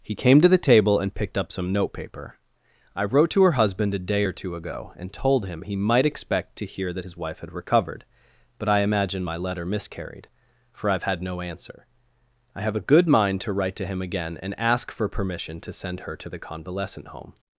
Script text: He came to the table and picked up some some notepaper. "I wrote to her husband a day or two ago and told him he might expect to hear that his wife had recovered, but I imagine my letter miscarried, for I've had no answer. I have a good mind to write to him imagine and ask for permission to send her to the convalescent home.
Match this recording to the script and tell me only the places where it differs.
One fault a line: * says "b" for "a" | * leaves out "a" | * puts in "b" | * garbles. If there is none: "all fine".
* leaves out "some"
* says "again" for "imagine"